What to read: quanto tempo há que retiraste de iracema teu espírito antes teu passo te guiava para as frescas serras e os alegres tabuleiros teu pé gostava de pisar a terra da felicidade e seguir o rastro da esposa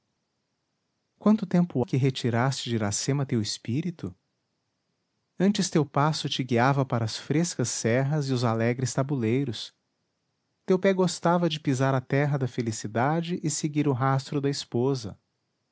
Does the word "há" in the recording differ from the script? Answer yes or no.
yes